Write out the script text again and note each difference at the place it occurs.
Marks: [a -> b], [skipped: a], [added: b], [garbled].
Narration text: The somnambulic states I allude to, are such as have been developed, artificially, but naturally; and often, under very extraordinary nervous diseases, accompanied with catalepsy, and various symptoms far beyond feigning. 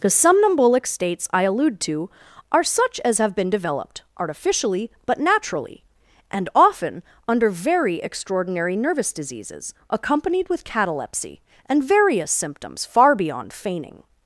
The somnambulic states I allude to, are such as have been developed, artificially, but naturally; and often, under very extraordinary nervous diseases, accompanied with catalepsy, and various symptoms far beyond feigning.